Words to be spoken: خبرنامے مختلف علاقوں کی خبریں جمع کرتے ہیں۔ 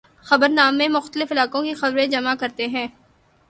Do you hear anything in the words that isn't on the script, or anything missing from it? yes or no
no